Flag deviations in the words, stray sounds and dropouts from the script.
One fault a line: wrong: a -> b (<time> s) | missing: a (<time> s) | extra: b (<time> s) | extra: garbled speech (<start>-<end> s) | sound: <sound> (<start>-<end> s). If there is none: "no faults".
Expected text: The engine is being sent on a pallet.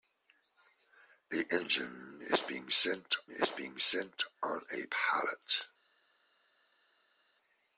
extra: is being sent (3.3 s)